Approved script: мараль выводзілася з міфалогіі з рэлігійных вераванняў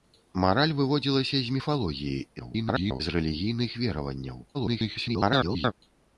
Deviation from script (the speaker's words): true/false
true